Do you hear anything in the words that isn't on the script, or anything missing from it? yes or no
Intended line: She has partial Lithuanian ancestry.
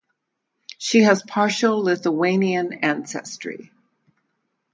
no